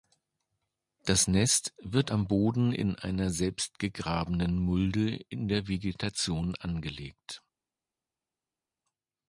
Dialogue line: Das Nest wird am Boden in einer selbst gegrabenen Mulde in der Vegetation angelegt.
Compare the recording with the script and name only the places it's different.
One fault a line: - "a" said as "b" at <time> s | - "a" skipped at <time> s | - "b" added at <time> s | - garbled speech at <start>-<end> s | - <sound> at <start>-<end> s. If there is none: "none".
none